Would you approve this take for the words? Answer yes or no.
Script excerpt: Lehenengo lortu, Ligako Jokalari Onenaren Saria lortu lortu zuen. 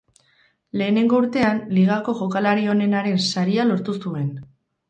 no